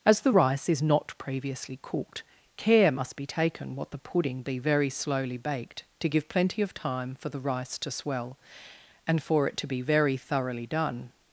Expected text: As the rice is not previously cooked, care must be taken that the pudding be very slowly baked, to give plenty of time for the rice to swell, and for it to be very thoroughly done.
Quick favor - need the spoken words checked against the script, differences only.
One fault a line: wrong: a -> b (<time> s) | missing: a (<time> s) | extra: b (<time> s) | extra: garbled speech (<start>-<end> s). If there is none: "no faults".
wrong: that -> what (3.7 s)